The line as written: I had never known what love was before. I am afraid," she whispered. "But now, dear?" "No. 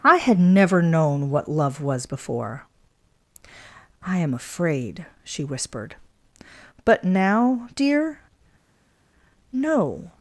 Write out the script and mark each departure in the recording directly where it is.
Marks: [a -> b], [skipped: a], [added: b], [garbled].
I had never known what love was before. I am afraid," she whispered. "But now, dear?" "No.